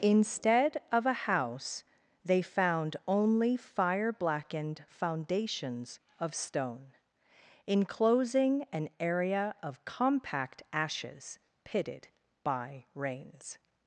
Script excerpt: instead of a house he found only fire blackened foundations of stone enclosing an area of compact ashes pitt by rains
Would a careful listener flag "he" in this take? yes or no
yes